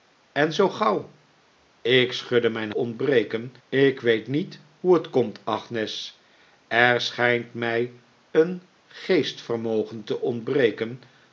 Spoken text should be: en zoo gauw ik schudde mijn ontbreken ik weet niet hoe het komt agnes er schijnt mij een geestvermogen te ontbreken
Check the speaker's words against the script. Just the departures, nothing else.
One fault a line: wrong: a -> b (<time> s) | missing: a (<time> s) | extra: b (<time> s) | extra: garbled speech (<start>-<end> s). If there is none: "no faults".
no faults